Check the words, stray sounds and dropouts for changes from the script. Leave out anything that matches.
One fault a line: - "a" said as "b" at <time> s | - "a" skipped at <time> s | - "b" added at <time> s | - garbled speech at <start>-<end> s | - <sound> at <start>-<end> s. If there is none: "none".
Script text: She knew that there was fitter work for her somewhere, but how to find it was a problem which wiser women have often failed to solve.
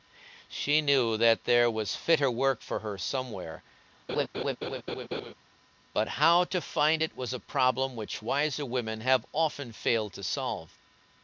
- laugh at 4.1-5.3 s